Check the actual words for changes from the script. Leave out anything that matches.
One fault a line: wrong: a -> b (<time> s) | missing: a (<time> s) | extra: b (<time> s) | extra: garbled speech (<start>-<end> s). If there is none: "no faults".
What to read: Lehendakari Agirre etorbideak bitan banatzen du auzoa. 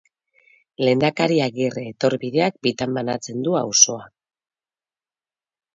no faults